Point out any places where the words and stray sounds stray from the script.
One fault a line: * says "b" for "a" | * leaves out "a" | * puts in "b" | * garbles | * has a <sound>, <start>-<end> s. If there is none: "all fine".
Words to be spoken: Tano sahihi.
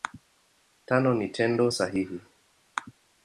* puts in "ni Tendo"